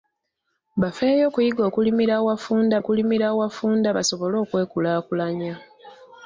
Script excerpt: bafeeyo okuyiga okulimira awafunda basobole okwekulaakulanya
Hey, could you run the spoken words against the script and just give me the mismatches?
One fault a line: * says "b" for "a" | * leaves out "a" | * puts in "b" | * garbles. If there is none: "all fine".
* puts in "okulimira awafunda"